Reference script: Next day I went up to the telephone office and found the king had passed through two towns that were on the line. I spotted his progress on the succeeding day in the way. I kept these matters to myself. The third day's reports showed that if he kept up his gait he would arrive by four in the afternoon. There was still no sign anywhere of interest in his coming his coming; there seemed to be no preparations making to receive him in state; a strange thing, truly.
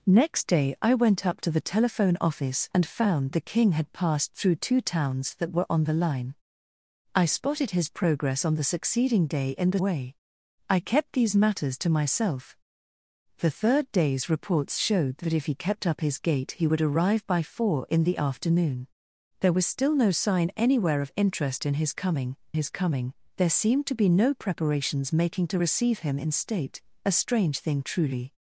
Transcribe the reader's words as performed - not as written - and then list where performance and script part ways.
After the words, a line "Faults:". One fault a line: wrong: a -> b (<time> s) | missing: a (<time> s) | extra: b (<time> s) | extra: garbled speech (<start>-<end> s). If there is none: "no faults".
Next day I went up to the telephone office and found the king had passed through two towns that were on the line. I spotted his progress on the succeeding day in the way. I kept these matters to myself. The third day's reports showed that if he kept up his gait he would arrive by four in the afternoon. There was still no sign anywhere of interest in his coming his coming; there seemed to be no preparations making to receive him in state; a strange thing, truly.
Faults:
no faults